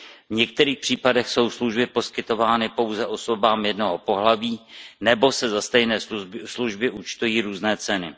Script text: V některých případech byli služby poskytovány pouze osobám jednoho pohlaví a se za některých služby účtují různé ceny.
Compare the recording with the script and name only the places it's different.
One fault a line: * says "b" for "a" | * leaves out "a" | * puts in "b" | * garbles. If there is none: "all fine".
* says "jsou" for "byli"
* says "nebo" for "a"
* says "stejné" for "některých"